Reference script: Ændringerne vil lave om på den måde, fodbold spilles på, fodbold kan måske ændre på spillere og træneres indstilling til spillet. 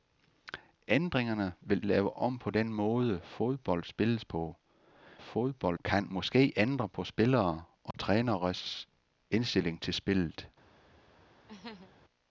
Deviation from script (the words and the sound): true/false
true